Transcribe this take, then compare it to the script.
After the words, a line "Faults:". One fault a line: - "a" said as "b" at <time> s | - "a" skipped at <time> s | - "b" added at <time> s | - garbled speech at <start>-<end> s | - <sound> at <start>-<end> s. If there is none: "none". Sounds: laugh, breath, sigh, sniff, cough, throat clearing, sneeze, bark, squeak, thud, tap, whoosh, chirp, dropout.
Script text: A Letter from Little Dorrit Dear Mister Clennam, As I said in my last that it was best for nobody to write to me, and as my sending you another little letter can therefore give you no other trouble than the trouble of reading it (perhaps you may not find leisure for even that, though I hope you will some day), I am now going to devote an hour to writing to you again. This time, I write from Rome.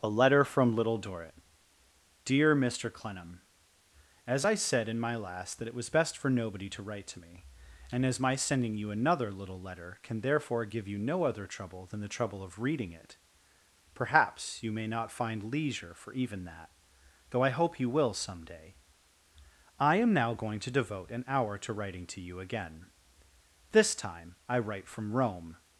A Letter from Little Dorrit Dear Mister Clennam, As I said in my last that it was best for nobody to write to me, and as my sending you another little letter can therefore give you no other trouble than the trouble of reading it (perhaps you may not find leisure for even that, though I hope you will some day), I am now going to devote an hour to writing to you again. This time, I write from Rome.
Faults:
none